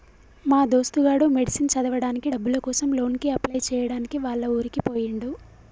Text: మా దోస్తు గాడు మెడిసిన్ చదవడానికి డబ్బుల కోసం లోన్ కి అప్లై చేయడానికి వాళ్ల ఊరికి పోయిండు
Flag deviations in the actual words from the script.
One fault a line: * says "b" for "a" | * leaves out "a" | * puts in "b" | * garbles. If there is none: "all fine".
all fine